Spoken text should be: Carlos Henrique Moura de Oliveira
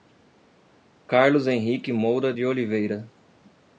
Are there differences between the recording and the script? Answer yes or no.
no